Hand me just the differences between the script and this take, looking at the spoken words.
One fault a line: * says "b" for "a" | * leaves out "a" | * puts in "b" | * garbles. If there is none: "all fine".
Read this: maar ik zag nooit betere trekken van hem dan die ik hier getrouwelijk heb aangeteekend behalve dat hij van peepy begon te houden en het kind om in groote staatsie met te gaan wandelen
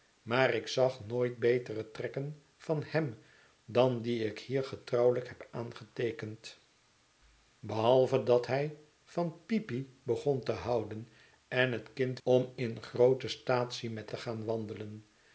all fine